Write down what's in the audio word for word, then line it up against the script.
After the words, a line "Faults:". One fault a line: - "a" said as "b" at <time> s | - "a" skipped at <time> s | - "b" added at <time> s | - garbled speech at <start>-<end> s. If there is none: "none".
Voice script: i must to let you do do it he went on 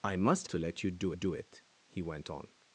i must to let you do do it he went on
Faults:
none